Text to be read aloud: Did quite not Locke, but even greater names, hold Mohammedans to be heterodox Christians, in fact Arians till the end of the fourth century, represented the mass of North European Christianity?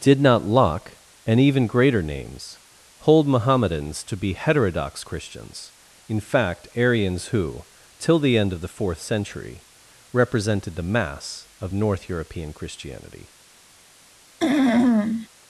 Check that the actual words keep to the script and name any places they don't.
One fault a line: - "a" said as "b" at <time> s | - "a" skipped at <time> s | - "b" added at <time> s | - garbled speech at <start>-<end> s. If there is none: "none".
- "quite" skipped at 0.2 s
- "but" said as "and" at 1.3 s
- "who" added at 7.3 s